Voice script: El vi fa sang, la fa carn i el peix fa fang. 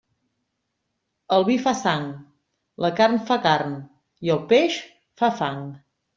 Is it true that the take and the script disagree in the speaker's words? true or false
true